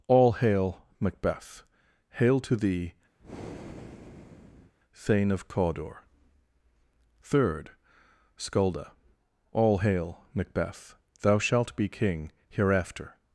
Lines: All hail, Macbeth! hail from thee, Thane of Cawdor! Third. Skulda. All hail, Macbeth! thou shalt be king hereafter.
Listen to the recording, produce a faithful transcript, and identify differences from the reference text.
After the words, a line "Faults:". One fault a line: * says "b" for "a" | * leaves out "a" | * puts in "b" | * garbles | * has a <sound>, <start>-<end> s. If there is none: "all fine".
All hail, Macbeth! hail to thee, Thane of Cawdor! Third. Skulda. All hail, Macbeth! thou shalt be king hereafter.
Faults:
* says "to" for "from"
* has a breath, 3.2-4.7 s